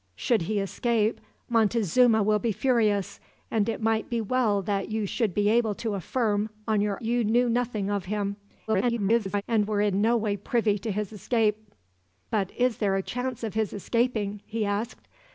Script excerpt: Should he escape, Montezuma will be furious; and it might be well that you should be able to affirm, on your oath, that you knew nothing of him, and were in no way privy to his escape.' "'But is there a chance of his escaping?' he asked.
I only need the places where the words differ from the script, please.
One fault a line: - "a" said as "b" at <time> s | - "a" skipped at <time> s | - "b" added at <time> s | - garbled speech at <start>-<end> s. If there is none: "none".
- "oath that" skipped at 7.0 s
- garbled speech at 8.7-9.4 s